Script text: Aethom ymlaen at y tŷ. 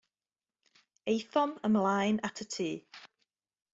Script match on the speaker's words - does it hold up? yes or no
yes